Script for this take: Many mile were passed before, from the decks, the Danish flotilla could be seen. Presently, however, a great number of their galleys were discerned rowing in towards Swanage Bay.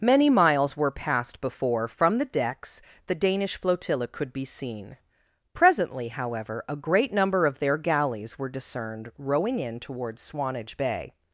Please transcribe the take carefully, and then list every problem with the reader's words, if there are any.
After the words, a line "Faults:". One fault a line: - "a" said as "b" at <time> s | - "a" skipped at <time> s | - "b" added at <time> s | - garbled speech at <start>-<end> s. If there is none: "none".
Many miles were passed before, from the decks, the Danish flotilla could be seen. Presently, however, a great number of their galleys were discerned rowing in towards Swanage Bay.
Faults:
- "mile" said as "miles" at 0.3 s